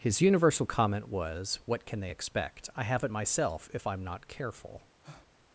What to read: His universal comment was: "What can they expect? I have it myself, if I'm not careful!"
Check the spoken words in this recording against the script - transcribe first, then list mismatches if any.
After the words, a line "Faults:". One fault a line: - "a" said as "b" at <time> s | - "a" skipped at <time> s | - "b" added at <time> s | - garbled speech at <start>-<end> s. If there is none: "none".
His universal comment was: "What can they expect? I have it myself, if I'm not careful!"
Faults:
none